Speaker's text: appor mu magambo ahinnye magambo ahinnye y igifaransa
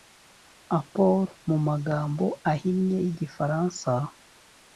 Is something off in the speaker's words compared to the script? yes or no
yes